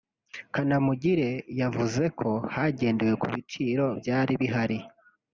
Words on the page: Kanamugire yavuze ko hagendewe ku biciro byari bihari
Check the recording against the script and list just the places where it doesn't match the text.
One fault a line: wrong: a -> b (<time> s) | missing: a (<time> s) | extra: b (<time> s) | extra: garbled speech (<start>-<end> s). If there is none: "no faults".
no faults